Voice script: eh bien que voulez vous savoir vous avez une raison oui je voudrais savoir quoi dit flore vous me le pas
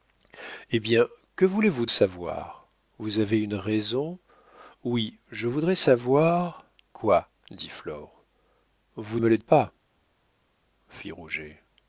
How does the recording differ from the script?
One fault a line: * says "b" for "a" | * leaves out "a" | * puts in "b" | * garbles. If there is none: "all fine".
all fine